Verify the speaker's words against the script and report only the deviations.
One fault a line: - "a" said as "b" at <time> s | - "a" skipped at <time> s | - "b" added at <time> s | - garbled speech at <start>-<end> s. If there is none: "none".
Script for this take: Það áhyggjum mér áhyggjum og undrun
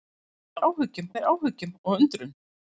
none